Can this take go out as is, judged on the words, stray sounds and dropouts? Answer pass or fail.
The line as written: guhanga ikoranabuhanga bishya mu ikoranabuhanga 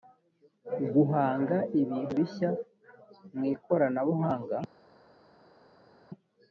fail